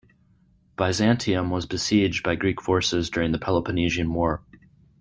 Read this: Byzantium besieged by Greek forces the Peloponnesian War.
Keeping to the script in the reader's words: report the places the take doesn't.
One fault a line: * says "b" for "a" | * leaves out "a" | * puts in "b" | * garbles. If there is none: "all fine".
* puts in "was"
* puts in "during"